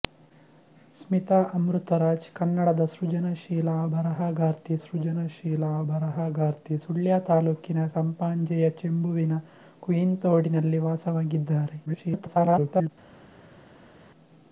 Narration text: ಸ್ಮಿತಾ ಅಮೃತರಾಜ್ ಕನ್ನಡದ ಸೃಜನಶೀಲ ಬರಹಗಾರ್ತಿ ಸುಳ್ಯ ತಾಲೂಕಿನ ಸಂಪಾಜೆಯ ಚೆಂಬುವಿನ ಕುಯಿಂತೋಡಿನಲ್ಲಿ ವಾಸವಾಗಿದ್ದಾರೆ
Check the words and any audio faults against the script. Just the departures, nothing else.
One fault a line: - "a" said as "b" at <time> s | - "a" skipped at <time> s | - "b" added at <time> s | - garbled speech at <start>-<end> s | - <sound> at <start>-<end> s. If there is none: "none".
- "ಸೃಜನಶೀಲ ಬರಹಗಾರ್ತಿ" added at 4.8 s
- garbled speech at 11.9-12.9 s